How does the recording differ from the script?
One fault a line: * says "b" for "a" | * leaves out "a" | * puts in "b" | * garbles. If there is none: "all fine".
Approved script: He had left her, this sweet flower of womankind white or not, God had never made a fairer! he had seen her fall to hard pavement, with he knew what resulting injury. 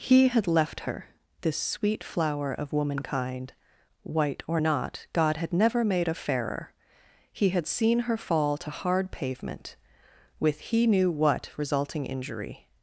all fine